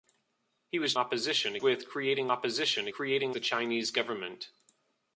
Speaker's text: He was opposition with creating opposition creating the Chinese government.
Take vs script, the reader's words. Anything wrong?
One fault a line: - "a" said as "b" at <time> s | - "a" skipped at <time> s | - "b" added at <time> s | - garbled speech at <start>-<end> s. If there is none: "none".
none